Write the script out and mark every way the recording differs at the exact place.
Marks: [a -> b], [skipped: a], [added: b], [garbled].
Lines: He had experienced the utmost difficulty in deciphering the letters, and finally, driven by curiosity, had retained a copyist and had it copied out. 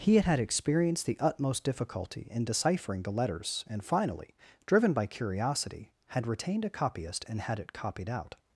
He had [added: had] experienced the utmost difficulty in deciphering the letters, and finally, driven by curiosity, had retained a copyist and had it copied out.